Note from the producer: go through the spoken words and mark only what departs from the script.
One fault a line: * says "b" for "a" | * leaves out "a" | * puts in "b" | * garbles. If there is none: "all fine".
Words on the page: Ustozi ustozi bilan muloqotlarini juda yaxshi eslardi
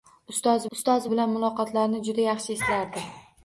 all fine